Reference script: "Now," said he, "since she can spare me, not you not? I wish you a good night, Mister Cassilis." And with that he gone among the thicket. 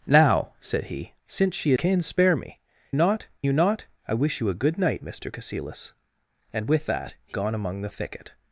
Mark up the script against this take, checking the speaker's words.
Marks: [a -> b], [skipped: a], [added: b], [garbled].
"Now," said he, "since she can spare me, not you not? I wish you a good night, Mister Cassilis." And with that he gone among the thicket.